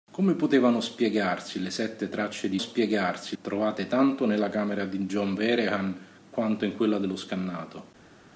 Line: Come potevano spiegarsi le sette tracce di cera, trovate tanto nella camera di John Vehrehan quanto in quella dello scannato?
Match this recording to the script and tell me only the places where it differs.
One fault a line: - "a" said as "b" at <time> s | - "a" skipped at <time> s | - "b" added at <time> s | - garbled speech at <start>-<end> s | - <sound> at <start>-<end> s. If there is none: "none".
- "cera" said as "spiegarsi" at 2.6 s